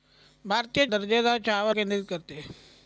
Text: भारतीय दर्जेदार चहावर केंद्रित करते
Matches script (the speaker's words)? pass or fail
pass